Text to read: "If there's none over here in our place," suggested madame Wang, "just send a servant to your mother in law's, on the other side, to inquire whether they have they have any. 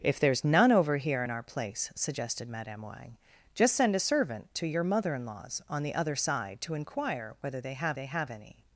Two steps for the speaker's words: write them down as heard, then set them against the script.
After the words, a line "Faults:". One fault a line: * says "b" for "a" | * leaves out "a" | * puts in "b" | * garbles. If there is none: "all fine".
"If there's none over here in our place," suggested madame Wang, "just send a servant to your mother in law's, on the other side, to inquire whether they have they have any.
Faults:
all fine